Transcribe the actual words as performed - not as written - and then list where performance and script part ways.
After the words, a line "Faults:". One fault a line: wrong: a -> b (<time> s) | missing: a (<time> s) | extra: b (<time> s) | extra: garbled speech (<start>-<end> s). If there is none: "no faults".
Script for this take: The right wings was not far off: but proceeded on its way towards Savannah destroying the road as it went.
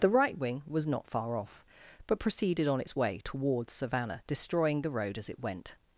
The right wing was not far off: but proceeded on its way towards Savannah destroying the road as it went.
Faults:
wrong: wings -> wing (0.4 s)